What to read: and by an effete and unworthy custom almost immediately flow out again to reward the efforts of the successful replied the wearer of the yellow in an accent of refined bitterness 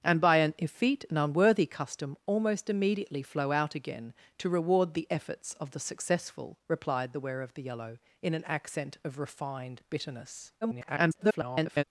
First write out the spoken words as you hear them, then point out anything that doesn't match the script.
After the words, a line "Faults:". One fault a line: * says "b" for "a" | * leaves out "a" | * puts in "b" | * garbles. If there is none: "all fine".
and by an effete and unworthy custom almost immediately flow out again to reward the efforts of the successful replied the wearer of the yellow in an accent of refined bitterness [garbled]
Faults:
* garbles